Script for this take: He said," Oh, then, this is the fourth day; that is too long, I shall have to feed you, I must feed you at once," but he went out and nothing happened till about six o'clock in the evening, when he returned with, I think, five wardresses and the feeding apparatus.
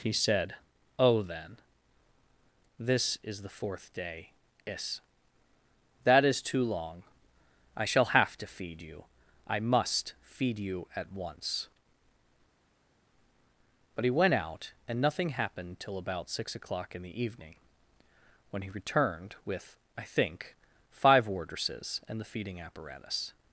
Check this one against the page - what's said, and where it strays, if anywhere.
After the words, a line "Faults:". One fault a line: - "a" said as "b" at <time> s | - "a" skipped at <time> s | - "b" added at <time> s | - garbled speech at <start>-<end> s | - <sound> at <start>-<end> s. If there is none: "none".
He said," Oh, then, this is the fourth day; is that is too long, I shall have to feed you, I must feed you at once," but he went out and nothing happened till about six o'clock in the evening, when he returned with, I think, five wardresses and the feeding apparatus.
Faults:
- "is" added at 4.7 s